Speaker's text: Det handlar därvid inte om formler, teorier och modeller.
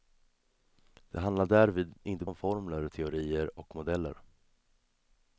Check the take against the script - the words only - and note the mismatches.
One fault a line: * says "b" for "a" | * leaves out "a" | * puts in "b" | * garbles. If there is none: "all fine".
all fine